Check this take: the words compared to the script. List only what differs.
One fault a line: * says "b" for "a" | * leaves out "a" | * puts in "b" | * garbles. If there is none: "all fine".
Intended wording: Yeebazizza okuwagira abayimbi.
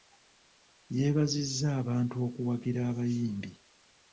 * puts in "abantu"